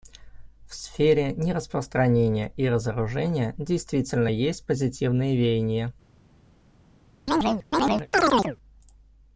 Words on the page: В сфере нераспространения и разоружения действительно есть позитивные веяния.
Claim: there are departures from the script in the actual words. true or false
false